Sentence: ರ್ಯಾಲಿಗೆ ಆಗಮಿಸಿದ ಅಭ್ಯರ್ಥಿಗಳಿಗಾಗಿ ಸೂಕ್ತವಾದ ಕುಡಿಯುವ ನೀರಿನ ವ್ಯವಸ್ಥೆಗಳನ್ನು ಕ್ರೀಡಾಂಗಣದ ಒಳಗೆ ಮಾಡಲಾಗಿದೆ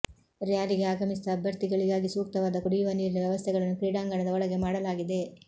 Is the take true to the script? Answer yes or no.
yes